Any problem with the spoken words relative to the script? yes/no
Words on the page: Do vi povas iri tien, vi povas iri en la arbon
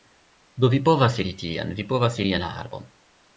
no